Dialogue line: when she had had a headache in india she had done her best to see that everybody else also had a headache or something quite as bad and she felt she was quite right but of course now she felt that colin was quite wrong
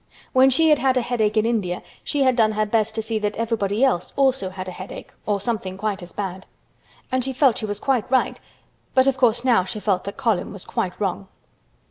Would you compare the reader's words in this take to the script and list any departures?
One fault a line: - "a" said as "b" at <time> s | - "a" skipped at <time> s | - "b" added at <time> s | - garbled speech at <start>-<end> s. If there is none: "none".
none